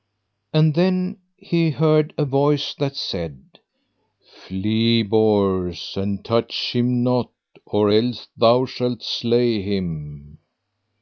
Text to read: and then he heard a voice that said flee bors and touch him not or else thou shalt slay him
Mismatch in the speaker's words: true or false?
false